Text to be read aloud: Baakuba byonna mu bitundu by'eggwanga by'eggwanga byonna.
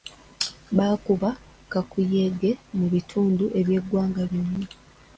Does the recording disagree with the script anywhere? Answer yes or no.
yes